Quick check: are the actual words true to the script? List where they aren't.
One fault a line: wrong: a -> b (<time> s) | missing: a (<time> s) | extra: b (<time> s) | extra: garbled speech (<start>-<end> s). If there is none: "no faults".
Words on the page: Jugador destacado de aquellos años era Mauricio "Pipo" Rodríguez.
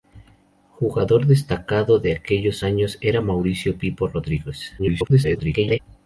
extra: garbled speech (4.8-5.8 s)